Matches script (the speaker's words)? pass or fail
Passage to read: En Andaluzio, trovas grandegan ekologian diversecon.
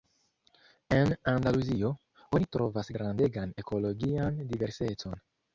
fail